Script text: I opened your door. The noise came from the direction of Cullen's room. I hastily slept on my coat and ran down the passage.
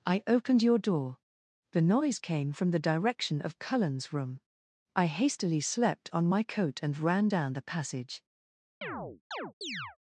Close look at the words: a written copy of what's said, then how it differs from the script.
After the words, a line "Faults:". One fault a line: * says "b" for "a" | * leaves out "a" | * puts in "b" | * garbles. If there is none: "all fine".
I opened your door. The noise came from the direction of Cullen's room. I hastily slept on my coat and ran down the passage.
Faults:
all fine